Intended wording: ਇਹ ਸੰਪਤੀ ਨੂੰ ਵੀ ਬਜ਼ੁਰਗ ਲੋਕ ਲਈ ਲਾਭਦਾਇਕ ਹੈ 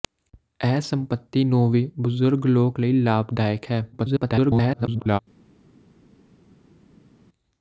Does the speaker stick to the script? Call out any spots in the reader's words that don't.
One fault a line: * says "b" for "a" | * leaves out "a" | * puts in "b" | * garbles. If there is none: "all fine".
* garbles